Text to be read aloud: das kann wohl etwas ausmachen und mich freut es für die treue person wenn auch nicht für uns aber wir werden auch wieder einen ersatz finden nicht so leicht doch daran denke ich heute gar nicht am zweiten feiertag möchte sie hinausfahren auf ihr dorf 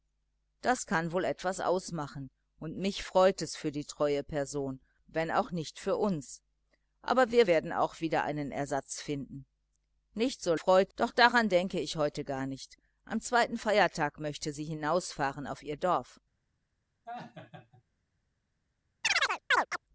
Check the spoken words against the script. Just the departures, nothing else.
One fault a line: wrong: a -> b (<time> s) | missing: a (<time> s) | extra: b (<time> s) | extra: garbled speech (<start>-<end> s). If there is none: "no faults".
wrong: leicht -> freut (10.6 s)